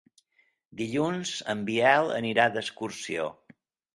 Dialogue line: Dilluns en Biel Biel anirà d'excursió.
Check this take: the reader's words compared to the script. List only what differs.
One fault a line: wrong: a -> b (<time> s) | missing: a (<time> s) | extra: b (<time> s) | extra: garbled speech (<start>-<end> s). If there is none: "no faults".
missing: Biel (2.1 s)